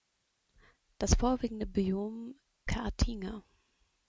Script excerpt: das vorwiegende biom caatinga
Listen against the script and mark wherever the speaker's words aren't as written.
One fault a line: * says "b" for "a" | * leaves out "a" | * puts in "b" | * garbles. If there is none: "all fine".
all fine